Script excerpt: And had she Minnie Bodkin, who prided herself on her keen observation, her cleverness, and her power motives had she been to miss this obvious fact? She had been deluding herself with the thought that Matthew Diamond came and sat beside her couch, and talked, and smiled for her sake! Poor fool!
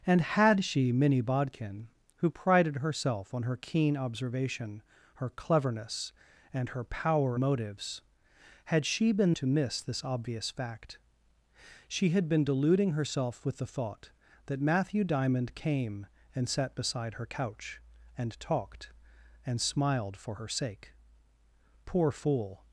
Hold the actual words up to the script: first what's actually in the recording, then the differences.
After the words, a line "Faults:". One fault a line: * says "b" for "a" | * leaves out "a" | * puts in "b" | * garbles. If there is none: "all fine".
And had she Minnie Bodkin, who prided herself on her keen observation, her cleverness, and her power motives had she been to miss this obvious fact? She had been deluding herself with the thought that Matthew Diamond came and sat beside her couch, and talked, and smiled for her sake! Poor fool!
Faults:
all fine